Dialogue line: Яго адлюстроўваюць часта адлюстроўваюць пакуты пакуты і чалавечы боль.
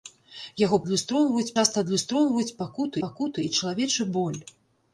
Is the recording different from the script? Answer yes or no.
no